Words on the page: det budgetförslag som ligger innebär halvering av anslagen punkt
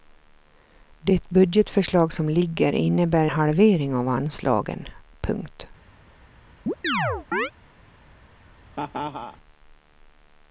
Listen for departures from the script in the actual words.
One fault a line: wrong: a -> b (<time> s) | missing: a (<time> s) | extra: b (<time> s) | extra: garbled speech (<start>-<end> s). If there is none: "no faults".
no faults